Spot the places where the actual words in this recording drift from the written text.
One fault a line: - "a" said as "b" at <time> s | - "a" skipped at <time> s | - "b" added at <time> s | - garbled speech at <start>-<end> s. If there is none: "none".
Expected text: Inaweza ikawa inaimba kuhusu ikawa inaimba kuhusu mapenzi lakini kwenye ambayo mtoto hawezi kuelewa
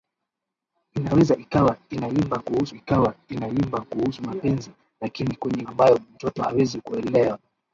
none